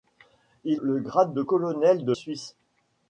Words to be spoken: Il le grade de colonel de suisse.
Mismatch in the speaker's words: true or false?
false